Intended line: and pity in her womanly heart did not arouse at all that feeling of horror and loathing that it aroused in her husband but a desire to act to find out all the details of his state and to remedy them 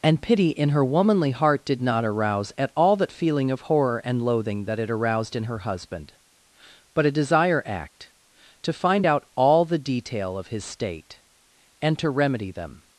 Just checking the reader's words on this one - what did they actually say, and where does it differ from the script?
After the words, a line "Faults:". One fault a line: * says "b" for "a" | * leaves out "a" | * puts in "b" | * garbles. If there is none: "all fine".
and pity in her womanly heart did not arouse at all that feeling of horror and loathing that it aroused in her husband but a desire act to find out all the detail of his state and to remedy them
Faults:
* leaves out "to"
* says "detail" for "details"